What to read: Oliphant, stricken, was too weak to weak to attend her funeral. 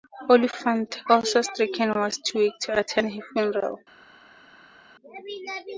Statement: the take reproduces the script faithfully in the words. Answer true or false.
false